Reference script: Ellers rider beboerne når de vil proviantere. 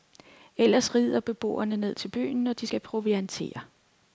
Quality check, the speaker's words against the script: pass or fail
fail